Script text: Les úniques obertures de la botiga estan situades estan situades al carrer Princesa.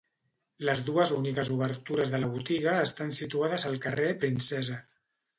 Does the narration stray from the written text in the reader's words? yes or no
yes